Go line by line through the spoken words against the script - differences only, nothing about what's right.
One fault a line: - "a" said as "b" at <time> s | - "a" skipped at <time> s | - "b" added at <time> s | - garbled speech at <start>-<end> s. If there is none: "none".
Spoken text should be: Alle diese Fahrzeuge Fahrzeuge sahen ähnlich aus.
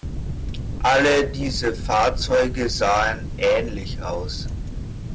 - "Fahrzeuge" skipped at 2.7 s